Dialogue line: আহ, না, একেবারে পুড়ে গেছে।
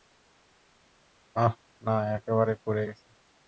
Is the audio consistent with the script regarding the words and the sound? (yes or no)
yes